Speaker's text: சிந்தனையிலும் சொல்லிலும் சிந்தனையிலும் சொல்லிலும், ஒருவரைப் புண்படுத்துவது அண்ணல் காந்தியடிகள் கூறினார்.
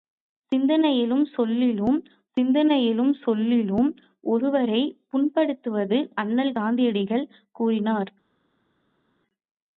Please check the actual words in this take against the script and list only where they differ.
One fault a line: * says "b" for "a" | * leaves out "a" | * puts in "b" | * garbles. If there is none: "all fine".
all fine